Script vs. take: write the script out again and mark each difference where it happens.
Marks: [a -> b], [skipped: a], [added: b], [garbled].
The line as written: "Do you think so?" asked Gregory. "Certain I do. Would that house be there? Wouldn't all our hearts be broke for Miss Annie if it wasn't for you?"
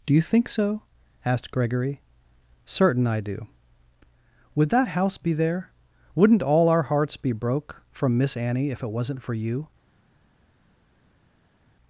"Do you think so?" asked Gregory. "Certain I do. Would that house be there? Wouldn't all our hearts be broke [for -> from] Miss Annie if it wasn't for you?"